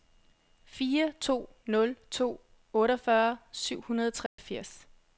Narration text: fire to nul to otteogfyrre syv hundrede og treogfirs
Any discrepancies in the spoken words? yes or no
no